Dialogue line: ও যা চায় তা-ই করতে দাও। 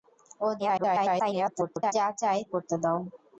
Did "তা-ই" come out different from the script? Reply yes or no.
yes